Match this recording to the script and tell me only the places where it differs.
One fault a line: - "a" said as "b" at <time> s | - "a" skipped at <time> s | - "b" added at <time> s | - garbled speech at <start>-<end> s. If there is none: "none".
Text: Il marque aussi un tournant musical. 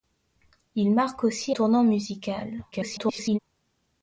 - "un" skipped at 1.6 s
- garbled speech at 2.7-3.4 s